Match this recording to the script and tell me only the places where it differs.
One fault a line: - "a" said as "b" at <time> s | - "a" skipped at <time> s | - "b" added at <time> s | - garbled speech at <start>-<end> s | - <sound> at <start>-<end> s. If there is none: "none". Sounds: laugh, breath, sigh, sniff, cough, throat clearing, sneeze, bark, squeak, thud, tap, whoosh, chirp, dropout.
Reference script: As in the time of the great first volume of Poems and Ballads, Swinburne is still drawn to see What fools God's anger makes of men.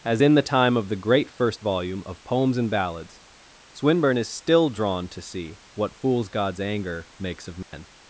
- dropout at 7.6-7.7 s